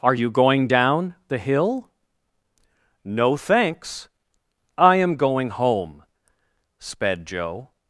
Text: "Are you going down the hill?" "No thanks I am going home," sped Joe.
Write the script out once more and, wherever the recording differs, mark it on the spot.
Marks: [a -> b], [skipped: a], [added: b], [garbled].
"Are you going down the hill?" "No thanks I am going home," sped Joe.